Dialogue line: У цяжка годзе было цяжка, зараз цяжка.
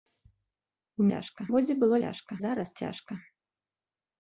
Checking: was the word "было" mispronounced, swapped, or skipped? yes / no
no